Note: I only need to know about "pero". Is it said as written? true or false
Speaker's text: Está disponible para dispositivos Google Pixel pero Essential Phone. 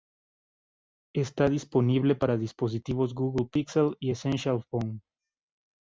false